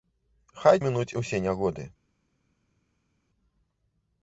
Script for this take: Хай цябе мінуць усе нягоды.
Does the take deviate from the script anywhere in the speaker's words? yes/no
yes